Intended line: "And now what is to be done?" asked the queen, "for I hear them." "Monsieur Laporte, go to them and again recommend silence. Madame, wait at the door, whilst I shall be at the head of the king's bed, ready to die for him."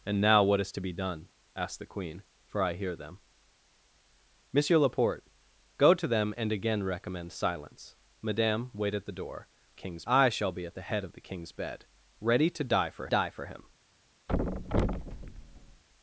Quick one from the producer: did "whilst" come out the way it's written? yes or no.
no